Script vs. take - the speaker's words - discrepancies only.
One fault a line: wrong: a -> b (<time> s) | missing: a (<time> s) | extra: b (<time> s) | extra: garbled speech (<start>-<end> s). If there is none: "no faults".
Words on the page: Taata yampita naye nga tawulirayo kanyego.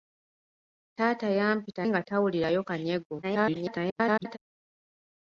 missing: naye (1.8 s)
extra: garbled speech (3.2-4.4 s)